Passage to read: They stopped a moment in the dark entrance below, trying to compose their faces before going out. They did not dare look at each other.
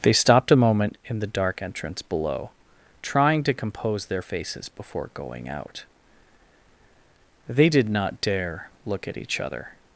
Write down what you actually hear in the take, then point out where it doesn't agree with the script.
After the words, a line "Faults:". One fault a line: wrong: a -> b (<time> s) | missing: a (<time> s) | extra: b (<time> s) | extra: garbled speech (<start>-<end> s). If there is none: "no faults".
They stopped a moment in the dark entrance below, trying to compose their faces before going out. They did not dare look at each other.
Faults:
no faults